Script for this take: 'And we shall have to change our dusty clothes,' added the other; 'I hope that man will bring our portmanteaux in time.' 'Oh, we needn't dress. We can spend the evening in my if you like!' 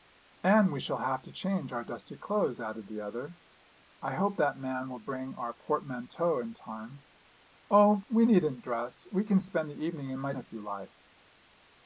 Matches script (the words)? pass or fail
pass